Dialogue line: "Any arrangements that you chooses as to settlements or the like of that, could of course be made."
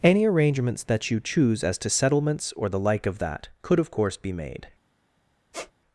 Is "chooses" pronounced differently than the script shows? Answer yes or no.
yes